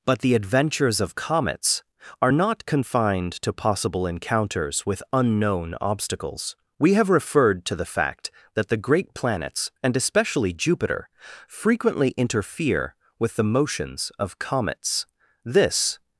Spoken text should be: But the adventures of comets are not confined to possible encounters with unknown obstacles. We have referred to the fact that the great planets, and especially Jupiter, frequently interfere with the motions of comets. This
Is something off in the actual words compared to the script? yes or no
no